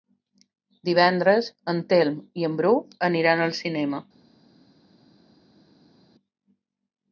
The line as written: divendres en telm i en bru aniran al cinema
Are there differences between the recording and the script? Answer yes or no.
no